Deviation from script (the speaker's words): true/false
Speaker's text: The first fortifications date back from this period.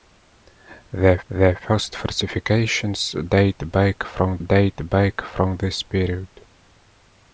true